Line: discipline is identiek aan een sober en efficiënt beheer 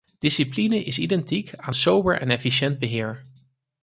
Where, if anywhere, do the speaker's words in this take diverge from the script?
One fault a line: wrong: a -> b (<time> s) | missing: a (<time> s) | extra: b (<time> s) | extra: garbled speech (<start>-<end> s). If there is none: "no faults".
missing: een (1.8 s)